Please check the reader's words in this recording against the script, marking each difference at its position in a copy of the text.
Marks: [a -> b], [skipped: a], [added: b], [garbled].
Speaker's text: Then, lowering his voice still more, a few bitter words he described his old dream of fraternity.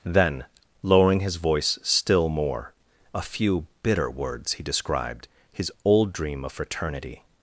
Then, lowering his voice still more, a few bitter words he described his old dream of fraternity.